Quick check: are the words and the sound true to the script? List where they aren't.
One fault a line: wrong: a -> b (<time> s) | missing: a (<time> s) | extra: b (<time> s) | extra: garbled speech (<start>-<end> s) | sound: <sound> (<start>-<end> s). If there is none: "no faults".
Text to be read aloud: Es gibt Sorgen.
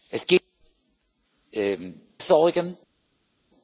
no faults